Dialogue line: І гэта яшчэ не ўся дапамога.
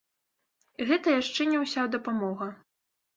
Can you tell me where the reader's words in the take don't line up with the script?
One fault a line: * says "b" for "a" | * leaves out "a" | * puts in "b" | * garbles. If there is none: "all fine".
all fine